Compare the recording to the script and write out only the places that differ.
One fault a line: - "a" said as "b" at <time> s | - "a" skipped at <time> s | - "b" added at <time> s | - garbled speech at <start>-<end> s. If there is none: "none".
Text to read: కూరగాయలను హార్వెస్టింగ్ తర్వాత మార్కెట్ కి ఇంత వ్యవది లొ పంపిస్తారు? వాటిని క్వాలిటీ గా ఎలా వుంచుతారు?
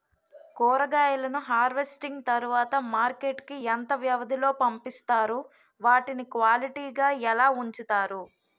none